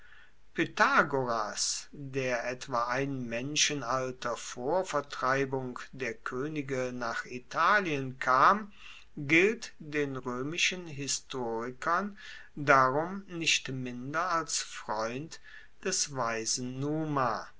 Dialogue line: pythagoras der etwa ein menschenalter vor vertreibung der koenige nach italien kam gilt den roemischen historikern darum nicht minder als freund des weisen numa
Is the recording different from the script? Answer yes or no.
no